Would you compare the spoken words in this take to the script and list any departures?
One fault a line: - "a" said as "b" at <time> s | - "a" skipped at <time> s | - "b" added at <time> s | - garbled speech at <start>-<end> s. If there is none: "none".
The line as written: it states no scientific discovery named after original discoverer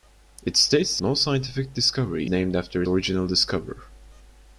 none